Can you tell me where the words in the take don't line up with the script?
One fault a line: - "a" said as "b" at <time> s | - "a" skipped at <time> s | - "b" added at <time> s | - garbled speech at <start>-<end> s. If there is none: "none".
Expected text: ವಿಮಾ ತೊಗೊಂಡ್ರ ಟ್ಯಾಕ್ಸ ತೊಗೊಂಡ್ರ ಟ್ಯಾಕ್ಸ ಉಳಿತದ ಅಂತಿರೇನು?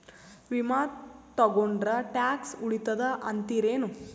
- "ತೊಗೊಂಡ್ರ ಟ್ಯಾಕ್ಸ" skipped at 2.5 s